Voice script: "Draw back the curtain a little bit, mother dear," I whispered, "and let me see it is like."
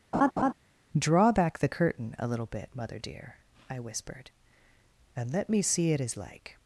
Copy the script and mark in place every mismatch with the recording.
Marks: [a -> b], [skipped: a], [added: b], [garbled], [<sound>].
[laugh] "Draw back the curtain a little bit, mother dear," I whispered, "and let me see it is like."